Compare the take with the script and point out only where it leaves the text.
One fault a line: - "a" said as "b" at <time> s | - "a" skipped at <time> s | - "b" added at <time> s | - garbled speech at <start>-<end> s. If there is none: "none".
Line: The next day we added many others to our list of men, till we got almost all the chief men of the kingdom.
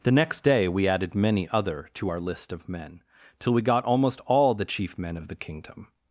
- "others" said as "other" at 1.5 s